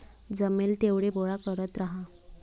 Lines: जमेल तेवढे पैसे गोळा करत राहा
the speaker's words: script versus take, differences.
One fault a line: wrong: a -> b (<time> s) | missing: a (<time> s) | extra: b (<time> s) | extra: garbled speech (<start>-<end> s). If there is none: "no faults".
missing: पैसे (1.1 s)